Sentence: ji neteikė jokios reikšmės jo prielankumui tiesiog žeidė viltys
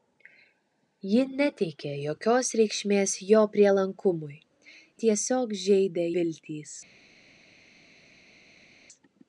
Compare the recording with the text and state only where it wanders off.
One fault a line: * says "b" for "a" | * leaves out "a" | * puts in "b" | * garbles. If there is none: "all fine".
all fine